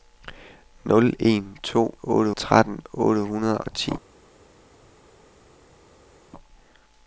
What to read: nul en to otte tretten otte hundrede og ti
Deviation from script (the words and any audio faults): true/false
false